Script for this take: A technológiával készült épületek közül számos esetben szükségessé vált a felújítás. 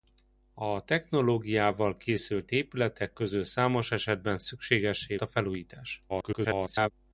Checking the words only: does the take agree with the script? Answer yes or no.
no